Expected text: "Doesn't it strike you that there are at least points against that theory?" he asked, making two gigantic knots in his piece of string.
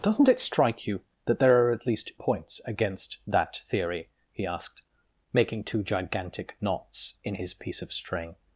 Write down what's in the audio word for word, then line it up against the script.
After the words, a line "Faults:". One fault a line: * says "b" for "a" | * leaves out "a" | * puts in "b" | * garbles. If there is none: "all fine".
"Doesn't it strike you that there are at least points against that theory?" he asked, making two gigantic knots in his piece of string.
Faults:
all fine